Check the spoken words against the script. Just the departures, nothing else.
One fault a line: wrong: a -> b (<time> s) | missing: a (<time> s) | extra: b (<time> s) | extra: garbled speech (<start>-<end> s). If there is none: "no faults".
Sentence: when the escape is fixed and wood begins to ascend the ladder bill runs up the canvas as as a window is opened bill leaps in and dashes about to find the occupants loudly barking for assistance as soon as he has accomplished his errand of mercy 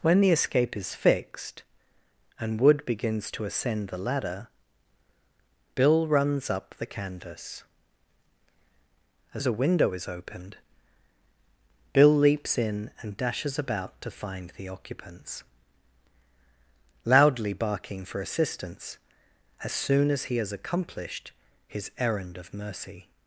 no faults